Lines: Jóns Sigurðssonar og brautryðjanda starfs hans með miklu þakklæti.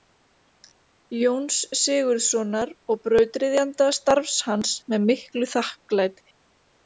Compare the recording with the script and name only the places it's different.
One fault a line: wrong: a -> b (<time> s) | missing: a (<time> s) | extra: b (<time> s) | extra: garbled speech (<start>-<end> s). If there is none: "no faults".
no faults